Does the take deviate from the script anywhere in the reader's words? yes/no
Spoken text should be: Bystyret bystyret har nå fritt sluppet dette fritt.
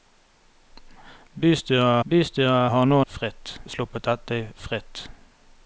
no